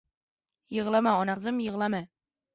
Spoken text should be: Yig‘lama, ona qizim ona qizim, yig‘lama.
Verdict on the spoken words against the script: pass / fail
fail